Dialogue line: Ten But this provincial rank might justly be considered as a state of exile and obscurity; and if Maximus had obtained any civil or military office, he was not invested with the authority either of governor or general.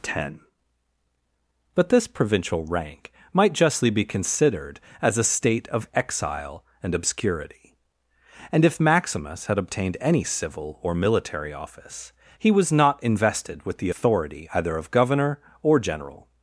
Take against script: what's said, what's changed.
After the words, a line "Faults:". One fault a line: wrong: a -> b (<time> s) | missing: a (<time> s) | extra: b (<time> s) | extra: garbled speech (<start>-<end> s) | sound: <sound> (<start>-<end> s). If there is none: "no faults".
Ten But this provincial rank might justly be considered as a state of exile and obscurity; and if Maximus had obtained any civil or military office, he was not invested with the authority either of governor or general.
Faults:
no faults